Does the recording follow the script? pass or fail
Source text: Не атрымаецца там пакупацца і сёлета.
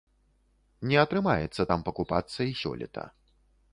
pass